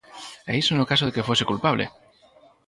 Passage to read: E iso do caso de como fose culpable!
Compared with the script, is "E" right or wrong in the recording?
right